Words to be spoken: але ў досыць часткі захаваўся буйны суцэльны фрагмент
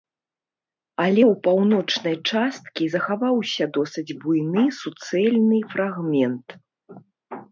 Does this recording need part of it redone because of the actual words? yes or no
yes